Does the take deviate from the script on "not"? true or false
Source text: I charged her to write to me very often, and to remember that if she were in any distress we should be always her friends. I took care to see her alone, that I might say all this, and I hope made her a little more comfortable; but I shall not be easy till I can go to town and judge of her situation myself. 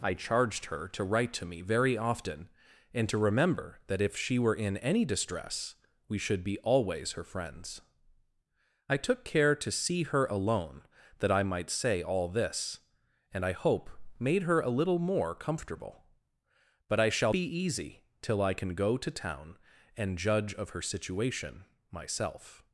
true